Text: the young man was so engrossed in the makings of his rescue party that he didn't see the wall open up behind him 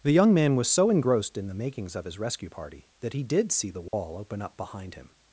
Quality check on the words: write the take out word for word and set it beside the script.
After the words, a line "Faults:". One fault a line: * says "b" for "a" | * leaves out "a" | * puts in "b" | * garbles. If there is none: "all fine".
the young man was so engrossed in the makings of his rescue party that he did see the wall open up behind him
Faults:
* says "did" for "didn't"